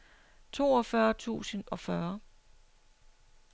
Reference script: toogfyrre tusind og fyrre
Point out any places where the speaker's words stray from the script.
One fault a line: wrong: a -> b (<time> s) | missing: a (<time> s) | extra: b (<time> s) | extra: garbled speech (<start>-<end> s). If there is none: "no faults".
no faults